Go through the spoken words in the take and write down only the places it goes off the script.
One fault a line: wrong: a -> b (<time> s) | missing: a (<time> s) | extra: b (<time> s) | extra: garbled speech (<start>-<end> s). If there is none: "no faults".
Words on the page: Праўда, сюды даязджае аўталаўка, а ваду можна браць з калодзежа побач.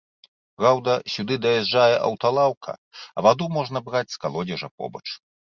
no faults